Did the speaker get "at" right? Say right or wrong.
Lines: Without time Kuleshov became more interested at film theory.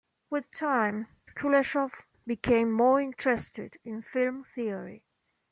wrong